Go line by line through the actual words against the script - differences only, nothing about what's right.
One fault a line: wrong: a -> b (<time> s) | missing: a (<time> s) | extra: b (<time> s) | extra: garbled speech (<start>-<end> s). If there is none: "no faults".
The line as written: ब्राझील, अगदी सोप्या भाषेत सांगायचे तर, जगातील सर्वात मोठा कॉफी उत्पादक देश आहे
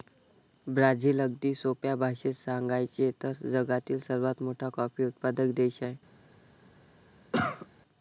no faults